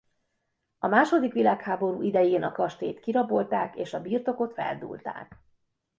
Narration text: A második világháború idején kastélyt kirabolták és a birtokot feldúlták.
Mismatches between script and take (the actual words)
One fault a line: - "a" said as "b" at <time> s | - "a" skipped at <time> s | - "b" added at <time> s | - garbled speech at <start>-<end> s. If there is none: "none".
- "a" added at 2.4 s